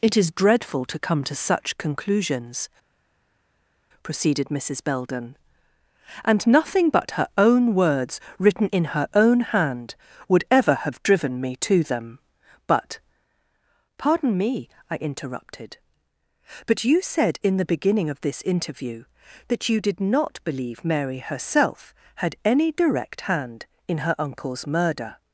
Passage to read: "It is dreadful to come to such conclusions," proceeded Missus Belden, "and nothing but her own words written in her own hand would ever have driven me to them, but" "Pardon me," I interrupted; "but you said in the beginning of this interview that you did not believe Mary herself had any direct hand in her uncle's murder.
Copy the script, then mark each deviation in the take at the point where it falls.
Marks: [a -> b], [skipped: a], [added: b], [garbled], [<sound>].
"It is dreadful to come to such conclusions," proceeded Missus Belden, "and nothing but her own words written in her own hand would ever have driven me to them, but" "Pardon me," I interrupted; "but you said in the beginning of this interview that you did not believe Mary herself had any direct hand in her uncle's murder.